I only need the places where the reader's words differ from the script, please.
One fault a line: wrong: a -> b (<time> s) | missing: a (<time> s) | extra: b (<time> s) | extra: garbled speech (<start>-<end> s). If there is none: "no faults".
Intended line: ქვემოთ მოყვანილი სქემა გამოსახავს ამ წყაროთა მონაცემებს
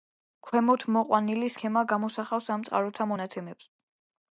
no faults